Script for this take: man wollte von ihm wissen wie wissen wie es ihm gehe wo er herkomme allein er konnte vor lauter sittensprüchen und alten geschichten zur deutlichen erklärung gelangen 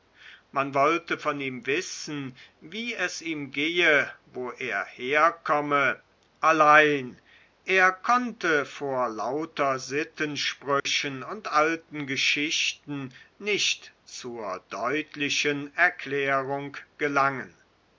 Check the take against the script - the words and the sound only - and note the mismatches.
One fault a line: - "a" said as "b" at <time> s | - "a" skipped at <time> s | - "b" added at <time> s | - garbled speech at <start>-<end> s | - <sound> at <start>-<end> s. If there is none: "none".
- "wissen wie" skipped at 3.0 s
- dropout at 10.8-10.9 s
- "nicht" added at 13.4 s